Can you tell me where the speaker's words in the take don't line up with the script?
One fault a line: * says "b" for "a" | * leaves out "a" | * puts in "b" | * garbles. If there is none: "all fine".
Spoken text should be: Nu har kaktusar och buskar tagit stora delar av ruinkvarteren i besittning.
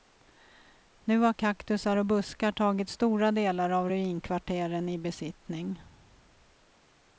all fine